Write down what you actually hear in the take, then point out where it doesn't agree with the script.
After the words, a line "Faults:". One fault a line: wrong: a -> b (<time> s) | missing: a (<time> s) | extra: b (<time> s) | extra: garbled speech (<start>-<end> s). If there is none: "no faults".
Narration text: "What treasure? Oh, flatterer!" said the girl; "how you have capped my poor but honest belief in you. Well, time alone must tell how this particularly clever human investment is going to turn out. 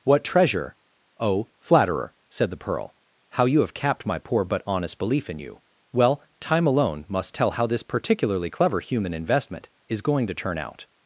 "What treasure? Oh, flatterer!" said the pearl; "how you have capped my poor but honest belief in you. Well, time alone must tell how this particularly clever human investment is going to turn out.
Faults:
wrong: girl -> pearl (2.6 s)